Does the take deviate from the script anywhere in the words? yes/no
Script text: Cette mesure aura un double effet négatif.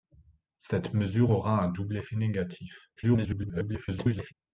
yes